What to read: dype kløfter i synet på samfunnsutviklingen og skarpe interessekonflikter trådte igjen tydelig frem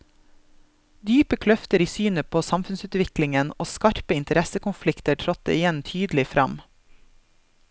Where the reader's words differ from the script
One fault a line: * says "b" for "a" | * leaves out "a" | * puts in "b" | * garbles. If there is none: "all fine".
all fine